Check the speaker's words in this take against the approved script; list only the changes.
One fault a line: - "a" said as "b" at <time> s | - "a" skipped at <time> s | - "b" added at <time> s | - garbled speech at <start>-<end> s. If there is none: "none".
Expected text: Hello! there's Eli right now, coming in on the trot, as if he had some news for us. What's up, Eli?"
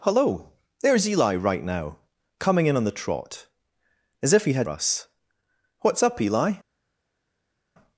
- "some news for" skipped at 4.7 s